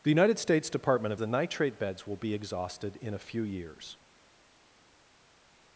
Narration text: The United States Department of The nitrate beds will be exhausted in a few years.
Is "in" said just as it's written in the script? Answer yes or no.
yes